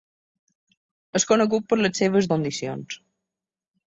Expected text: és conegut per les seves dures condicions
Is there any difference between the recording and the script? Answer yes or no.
yes